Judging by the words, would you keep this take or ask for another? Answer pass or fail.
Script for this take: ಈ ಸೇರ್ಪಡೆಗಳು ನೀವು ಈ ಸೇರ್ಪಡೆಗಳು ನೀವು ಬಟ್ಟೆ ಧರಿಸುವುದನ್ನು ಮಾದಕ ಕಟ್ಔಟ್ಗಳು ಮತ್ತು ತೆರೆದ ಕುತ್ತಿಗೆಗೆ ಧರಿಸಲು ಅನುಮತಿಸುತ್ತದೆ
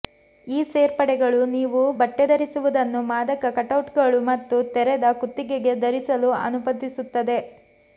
fail